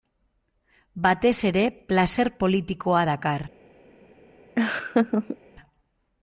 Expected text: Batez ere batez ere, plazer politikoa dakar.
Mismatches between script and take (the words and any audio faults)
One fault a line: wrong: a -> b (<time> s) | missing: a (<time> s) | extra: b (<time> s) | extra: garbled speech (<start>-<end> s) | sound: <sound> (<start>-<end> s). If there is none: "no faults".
missing: batez ere (1.6 s)
sound: laugh (4.6-5.4 s)